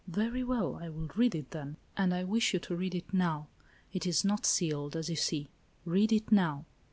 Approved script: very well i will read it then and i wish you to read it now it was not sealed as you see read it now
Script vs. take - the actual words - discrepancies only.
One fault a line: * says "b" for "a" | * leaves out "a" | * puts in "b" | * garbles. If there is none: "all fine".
* says "is" for "was"